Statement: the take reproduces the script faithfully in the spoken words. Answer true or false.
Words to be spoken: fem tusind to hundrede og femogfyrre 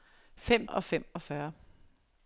false